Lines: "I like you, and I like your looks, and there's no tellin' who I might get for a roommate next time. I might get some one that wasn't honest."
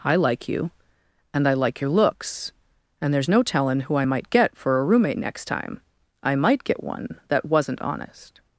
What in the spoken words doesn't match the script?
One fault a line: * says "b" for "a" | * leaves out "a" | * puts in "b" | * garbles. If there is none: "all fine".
* leaves out "some"